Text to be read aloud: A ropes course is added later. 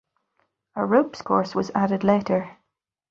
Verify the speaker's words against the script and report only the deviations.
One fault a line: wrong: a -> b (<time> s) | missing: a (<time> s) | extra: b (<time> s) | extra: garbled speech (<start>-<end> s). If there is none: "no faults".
wrong: is -> was (1.5 s)